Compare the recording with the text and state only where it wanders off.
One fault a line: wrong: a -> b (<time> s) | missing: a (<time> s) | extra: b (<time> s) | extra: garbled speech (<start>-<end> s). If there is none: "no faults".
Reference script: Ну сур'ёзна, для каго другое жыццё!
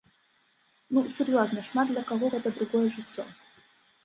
extra: шмат (1.7 s)
extra: гэта (2.3 s)